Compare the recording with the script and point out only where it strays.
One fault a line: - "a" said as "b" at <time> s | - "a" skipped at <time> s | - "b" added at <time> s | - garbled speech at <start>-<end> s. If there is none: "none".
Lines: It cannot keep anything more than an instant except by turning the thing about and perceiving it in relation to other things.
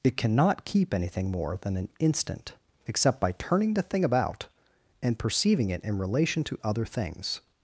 none